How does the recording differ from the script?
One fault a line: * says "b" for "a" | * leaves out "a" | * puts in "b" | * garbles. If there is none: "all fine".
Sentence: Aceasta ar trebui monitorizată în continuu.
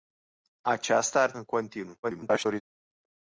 * leaves out "trebui monitorizată"
* garbles